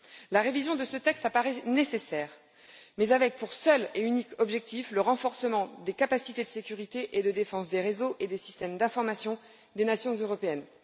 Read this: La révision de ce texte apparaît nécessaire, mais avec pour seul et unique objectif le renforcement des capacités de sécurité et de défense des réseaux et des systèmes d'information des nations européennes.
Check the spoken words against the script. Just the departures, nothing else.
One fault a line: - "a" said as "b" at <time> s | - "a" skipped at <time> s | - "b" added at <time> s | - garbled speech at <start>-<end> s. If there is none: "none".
none